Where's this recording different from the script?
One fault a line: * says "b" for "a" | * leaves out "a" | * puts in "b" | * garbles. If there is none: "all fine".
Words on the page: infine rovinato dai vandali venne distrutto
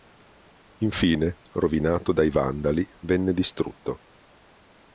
all fine